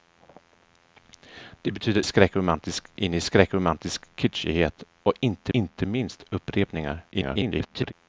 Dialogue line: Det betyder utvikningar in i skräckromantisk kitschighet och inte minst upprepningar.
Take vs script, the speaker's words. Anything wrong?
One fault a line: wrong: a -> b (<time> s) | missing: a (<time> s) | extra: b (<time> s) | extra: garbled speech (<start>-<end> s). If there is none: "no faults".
wrong: utvikningar -> skräckromantisk (2.0 s)
extra: inte (5.5 s)
extra: garbled speech (7.1-7.9 s)